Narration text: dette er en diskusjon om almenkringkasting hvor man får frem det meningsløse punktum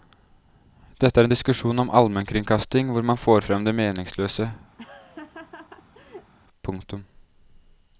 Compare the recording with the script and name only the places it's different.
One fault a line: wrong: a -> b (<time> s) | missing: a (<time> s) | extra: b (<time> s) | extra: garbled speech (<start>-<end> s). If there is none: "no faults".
no faults